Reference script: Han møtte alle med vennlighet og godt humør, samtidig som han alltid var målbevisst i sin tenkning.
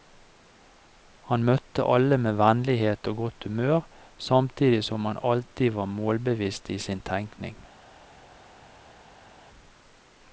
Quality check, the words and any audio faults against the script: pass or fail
pass